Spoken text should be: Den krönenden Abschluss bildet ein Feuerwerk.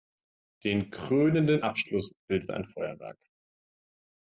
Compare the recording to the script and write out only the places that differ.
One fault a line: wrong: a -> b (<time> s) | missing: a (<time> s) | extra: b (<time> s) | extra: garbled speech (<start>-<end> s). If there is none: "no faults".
no faults